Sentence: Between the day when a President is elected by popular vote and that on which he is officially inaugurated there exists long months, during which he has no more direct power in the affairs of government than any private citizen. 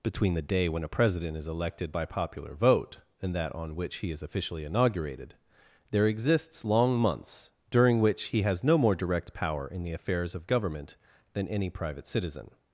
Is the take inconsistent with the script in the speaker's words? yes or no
no